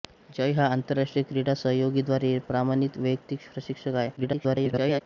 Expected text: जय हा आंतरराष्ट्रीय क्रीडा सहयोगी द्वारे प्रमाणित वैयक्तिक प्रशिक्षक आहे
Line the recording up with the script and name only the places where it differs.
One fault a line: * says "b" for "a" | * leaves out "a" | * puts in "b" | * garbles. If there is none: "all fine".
* garbles